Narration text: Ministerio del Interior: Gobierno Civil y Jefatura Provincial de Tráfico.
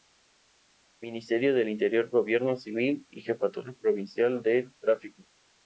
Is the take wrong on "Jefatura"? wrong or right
right